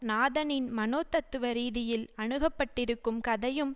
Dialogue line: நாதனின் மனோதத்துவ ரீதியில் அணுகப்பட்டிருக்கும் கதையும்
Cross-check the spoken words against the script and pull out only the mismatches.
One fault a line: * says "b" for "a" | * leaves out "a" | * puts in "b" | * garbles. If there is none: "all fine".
all fine